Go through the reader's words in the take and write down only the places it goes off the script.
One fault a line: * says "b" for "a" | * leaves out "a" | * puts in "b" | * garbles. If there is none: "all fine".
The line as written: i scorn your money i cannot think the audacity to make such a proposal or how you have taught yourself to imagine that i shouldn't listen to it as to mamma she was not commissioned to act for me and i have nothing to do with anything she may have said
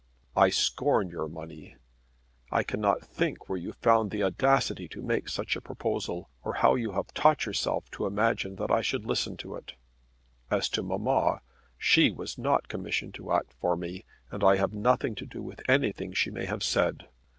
* puts in "where you found"
* says "should" for "shouldn't"